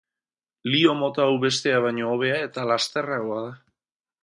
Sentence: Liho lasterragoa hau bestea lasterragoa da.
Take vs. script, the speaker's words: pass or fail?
fail